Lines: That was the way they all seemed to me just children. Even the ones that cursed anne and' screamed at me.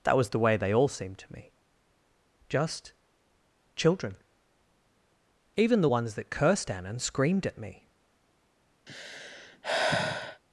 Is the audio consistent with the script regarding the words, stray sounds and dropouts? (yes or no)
no